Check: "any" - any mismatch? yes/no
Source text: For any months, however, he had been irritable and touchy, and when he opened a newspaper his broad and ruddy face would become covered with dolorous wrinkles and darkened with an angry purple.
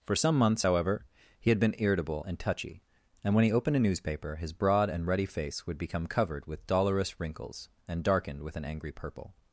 yes